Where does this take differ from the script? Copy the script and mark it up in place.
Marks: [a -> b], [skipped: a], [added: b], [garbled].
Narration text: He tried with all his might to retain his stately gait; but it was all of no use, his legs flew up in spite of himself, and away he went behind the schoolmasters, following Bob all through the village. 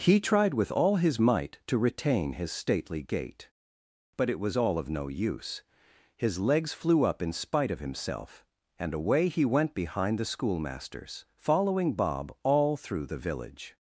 He tried with all his might to retain his stately gait; but it was all of no use, his legs flew up in spite of himself, and away he went behind the schoolmasters, following Bob all through the village.